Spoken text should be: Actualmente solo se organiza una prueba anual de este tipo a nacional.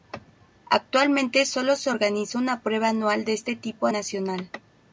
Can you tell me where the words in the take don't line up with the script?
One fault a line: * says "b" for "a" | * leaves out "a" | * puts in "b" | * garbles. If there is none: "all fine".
all fine